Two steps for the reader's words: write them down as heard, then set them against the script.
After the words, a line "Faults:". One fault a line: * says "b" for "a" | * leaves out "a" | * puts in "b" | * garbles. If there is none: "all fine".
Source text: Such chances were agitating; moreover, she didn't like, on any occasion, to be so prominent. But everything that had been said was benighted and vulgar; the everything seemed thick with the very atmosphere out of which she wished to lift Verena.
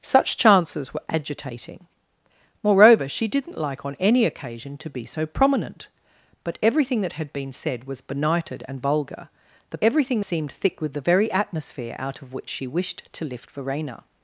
Such chances were agitating; moreover, she didn't like, on any occasion, to be so prominent. But everything that had been said was benighted and vulgar; the everything seemed thick with the very atmosphere out of which she wished to lift Verena.
Faults:
all fine